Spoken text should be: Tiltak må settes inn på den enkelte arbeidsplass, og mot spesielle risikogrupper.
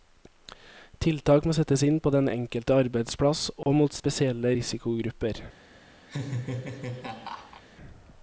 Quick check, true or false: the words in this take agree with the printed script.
true